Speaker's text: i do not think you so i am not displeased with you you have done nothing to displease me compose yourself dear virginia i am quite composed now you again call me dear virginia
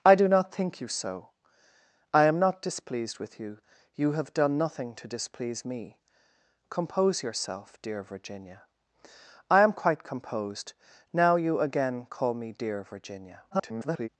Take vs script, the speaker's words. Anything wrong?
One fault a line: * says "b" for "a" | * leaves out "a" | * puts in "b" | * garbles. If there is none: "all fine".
* garbles